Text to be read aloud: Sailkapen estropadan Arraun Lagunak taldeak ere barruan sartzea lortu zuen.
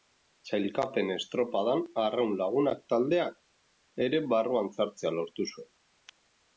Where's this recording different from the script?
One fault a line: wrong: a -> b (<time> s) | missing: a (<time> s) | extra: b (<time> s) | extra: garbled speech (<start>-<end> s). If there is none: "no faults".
no faults